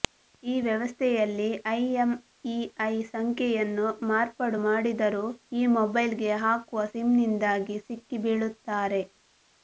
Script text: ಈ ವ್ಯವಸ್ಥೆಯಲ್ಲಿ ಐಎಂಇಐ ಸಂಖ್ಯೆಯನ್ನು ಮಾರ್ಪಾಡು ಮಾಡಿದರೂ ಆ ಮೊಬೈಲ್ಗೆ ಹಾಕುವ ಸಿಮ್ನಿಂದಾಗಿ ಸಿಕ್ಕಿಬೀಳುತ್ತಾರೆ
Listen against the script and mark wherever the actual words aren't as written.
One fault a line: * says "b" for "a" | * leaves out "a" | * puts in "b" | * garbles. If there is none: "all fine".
* says "ಈ" for "ಆ"